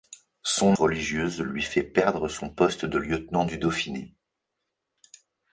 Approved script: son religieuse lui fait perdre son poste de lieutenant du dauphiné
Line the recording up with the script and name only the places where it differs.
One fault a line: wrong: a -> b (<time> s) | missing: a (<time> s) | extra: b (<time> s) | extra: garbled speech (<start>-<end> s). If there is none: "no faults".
no faults